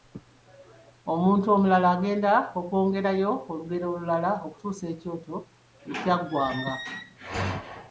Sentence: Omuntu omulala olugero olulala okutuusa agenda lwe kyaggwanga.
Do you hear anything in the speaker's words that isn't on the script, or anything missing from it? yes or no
yes